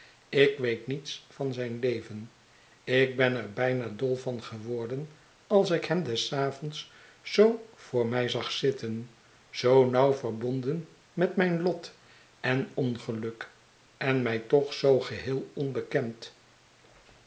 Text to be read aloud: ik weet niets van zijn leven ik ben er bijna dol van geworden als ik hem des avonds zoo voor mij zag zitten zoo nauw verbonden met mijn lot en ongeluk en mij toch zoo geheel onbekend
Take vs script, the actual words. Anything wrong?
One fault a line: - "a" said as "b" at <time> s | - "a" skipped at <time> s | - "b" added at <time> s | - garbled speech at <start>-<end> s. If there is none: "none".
none